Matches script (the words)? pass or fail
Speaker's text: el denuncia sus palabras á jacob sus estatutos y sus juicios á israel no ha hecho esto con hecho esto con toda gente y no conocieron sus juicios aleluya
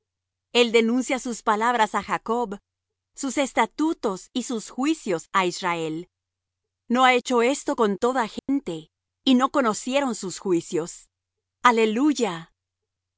fail